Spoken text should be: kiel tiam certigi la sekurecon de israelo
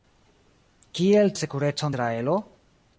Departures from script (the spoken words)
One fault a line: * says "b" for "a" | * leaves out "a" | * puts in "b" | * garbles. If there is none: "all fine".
* leaves out "tiam certigi"
* leaves out "de"